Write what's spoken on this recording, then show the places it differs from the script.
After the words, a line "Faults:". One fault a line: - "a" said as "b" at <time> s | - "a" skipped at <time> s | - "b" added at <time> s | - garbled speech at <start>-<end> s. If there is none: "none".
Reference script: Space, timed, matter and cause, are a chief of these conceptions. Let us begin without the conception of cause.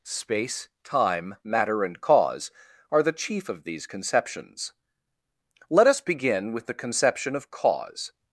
Space, time, matter and cause, are the chief of these conceptions. Let us begin with the conception of cause.
Faults:
- "timed" said as "time" at 0.8 s
- "a" said as "the" at 3.0 s
- "without" said as "with" at 6.5 s